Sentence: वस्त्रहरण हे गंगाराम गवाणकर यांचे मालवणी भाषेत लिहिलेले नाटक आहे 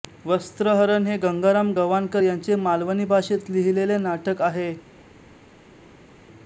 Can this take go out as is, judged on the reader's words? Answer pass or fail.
pass